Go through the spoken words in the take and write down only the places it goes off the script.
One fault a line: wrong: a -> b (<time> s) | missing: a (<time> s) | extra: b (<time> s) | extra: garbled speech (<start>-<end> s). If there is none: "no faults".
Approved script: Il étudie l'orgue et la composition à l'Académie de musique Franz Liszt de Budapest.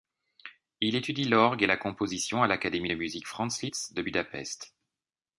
no faults